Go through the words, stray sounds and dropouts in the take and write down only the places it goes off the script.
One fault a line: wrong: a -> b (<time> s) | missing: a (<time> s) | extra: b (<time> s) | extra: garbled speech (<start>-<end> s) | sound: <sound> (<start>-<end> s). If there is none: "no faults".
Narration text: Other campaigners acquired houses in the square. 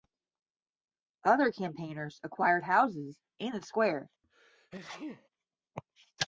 sound: sneeze (4.2-5.3 s)